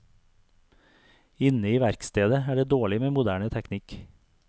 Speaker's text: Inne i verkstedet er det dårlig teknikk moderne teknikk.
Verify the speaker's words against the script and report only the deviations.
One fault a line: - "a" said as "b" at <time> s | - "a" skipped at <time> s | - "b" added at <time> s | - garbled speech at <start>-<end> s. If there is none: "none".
- "teknikk" said as "med" at 3.0 s